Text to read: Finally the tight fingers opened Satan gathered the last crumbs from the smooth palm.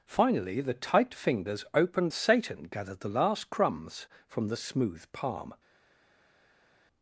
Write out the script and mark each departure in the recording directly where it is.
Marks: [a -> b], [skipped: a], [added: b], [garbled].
Finally the tight fingers opened Satan gathered the last crumbs from the smooth palm.